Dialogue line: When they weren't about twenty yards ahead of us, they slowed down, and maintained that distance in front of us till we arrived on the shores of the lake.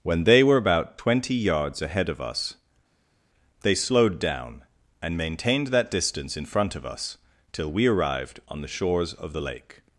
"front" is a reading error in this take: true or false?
false